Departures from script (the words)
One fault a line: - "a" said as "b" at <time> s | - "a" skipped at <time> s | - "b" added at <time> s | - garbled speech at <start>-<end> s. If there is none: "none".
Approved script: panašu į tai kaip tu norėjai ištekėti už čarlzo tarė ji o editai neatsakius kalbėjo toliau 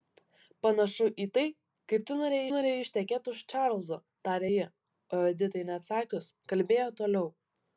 - "norėjai" added at 2.5 s